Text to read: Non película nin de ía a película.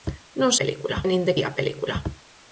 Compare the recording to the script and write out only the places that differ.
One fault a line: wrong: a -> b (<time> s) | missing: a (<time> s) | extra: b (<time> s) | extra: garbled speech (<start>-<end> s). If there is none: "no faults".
no faults